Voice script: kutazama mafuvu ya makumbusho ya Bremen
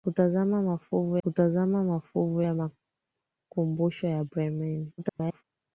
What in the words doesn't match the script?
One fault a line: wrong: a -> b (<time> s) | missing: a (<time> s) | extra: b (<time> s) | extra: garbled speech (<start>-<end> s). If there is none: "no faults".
extra: kutazama mafuvu (1.2 s)
extra: garbled speech (5.0-5.4 s)